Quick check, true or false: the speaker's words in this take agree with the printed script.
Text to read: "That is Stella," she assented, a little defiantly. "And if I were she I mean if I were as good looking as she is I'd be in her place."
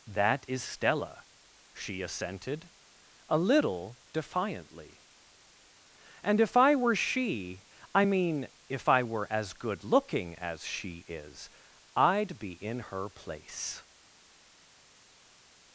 true